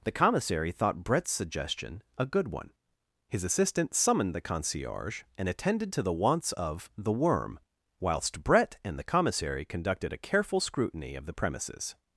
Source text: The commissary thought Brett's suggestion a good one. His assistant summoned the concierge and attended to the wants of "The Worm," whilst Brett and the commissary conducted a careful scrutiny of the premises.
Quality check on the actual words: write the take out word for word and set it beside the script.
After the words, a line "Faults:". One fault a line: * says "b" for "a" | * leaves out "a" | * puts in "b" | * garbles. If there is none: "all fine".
The commissary thought Brett's suggestion a good one. His assistant summoned the concierge and attended to the wants of "The Worm," whilst Brett and the commissary conducted a careful scrutiny of the premises.
Faults:
all fine